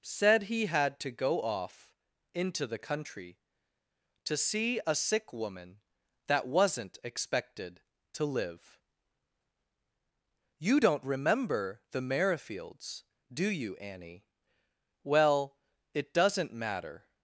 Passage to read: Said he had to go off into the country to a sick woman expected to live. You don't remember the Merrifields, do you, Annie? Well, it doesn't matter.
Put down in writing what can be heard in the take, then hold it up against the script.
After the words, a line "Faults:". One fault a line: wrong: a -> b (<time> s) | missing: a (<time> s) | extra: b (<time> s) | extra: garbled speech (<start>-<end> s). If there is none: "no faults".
Said he had to go off into the country to see a sick woman that wasn't expected to live. You don't remember the Merrifields, do you, Annie? Well, it doesn't matter.
Faults:
extra: see (4.3 s)
extra: that wasn't (6.3 s)